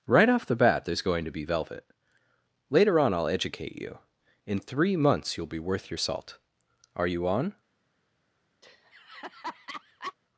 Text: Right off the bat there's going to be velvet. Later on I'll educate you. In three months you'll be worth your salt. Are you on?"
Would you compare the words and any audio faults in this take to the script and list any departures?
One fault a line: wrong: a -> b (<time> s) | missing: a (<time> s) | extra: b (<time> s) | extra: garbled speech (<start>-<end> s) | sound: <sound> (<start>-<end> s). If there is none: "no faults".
sound: laugh (8.6-10.1 s)